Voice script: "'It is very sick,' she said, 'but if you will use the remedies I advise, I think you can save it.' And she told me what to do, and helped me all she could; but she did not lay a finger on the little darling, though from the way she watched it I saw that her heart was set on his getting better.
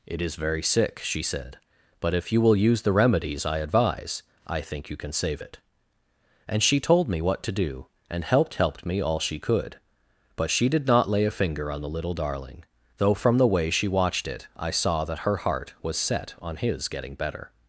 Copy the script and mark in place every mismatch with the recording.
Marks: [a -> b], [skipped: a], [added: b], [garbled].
"'It is very sick,' she said, 'but if you will use the remedies I advise, I think you can save it.' And she told me what to do, and helped [added: helped] me all she could; but she did not lay a finger on the little darling, though from the way she watched it I saw that her heart was set on his getting better.